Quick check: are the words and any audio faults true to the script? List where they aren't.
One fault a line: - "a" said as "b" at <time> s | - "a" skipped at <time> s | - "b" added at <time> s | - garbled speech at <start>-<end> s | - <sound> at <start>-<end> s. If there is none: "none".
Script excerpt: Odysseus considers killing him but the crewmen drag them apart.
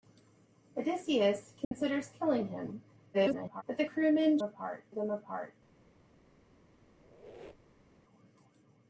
- dropout at 1.6-1.7 s
- garbled speech at 3.1-3.6 s
- "drag" said as "apart" at 4.4 s
- squeak at 6.8-8.0 s